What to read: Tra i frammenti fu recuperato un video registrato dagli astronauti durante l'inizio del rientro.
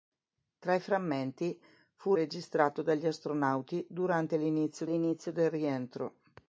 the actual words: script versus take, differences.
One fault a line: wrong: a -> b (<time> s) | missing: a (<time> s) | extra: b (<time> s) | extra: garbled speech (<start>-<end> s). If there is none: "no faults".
missing: recuperato un video (2.1 s)
extra: l'inizio (4.9 s)